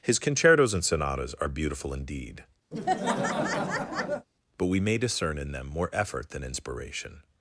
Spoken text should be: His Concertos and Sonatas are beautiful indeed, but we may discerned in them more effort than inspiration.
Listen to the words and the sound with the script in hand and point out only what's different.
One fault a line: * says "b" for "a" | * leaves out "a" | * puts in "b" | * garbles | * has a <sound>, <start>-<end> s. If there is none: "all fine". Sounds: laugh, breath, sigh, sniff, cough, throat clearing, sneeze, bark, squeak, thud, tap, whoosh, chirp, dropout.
* has a laugh, 2.7-4.3 s
* says "discern" for "discerned"